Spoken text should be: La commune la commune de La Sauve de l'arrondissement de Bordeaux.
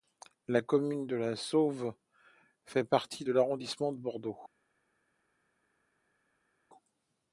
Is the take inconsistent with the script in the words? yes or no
yes